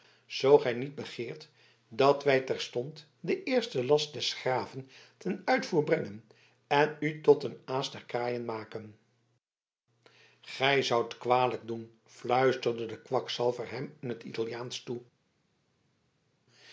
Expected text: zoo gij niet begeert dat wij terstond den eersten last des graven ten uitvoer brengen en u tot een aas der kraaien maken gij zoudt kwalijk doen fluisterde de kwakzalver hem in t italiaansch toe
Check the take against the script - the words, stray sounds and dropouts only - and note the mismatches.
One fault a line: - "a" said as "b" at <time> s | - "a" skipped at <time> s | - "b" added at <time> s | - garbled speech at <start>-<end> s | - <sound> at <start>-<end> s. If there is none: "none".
none